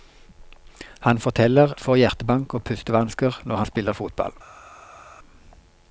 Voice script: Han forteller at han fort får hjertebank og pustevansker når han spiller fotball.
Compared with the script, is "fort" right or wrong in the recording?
wrong